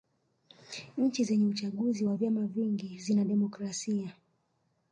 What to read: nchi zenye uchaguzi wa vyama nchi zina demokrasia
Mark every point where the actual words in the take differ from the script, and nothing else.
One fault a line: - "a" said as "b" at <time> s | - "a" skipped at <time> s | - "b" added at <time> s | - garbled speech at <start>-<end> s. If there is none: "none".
- "nchi" said as "vingi" at 2.5 s